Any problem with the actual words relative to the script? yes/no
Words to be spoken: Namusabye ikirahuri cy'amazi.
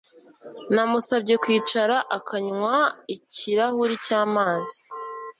yes